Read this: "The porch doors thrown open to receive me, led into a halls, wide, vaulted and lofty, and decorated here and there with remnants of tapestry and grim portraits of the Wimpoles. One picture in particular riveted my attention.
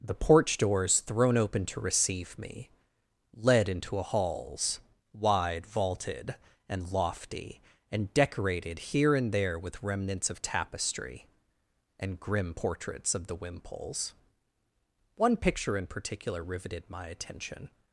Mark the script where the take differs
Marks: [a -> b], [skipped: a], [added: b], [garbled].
"The porch doors thrown open to receive me, led into a halls, wide, vaulted and lofty, and decorated here and there with remnants of tapestry and grim portraits of the Wimpoles. One picture in particular riveted my attention.